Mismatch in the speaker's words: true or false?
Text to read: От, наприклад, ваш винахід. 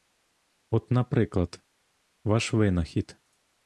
false